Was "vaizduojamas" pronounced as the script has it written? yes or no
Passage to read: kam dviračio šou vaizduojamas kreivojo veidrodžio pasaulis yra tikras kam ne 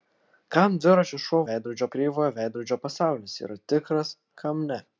no